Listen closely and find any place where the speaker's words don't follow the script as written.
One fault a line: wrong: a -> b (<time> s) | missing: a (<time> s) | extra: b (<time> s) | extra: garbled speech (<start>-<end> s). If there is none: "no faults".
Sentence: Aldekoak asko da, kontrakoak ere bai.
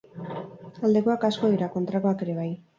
wrong: da -> dira (1.5 s)